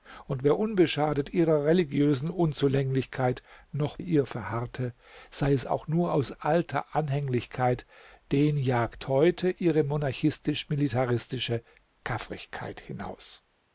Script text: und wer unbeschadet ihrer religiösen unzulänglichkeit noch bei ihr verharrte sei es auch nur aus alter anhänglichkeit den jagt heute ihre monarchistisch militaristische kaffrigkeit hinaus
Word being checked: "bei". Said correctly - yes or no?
no